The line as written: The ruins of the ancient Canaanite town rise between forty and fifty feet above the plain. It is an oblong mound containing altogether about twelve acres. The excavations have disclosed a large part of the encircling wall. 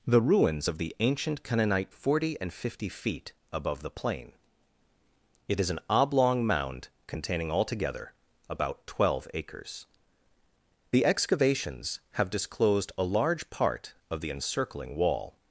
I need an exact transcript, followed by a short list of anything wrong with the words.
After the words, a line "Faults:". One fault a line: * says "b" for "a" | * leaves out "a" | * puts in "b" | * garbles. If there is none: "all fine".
The ruins of the ancient Canaanite forty and fifty feet above the plain. It is an oblong mound containing altogether about twelve acres. The excavations have disclosed a large part of the encircling wall.
Faults:
* leaves out "town rise between"